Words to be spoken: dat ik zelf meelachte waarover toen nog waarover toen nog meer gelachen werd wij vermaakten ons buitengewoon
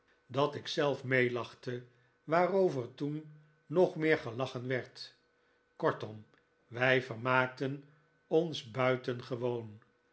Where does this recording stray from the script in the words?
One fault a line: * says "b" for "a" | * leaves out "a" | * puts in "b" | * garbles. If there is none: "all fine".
* leaves out "waarover toen nog"
* puts in "kortom"